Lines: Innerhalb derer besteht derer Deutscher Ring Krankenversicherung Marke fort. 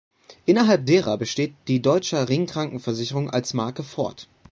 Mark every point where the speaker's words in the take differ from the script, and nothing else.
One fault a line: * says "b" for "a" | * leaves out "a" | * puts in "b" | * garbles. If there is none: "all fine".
* says "die" for "derer"
* puts in "als"